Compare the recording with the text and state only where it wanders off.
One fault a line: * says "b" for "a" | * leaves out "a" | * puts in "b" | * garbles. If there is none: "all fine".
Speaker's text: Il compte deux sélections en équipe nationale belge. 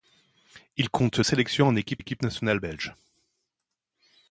* leaves out "deux"
* puts in "équipe"